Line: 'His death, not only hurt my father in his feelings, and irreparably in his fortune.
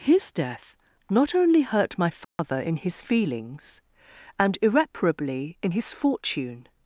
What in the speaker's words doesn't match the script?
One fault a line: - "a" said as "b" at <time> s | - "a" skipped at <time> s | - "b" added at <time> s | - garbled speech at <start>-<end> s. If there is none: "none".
none